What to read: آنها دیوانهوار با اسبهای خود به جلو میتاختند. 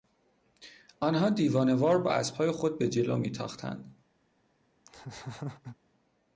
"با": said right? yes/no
yes